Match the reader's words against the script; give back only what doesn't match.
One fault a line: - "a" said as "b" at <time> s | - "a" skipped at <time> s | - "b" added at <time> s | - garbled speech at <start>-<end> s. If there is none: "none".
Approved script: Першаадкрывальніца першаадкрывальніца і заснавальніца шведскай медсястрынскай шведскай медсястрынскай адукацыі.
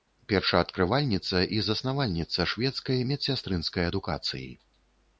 - "першаадкрывальніца" skipped at 1.4 s
- "шведскай медсястрынскай" skipped at 3.8 s